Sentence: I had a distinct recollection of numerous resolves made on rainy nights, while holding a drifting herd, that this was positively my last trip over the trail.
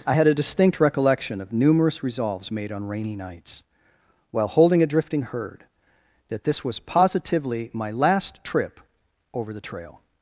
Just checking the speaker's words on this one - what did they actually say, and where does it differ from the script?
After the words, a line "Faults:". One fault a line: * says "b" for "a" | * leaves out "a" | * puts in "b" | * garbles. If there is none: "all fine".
I had a distinct recollection of numerous resolves made on rainy nights, while holding a drifting herd, that this was positively my last trip over the trail.
Faults:
all fine